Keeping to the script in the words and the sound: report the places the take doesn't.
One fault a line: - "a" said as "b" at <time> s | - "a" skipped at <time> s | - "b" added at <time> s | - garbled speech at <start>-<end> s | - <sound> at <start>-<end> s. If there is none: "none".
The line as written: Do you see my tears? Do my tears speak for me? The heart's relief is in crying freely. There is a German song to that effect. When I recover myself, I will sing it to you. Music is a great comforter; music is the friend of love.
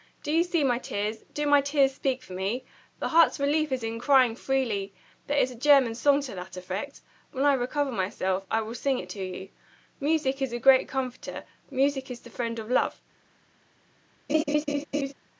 - laugh at 14.3-15.1 s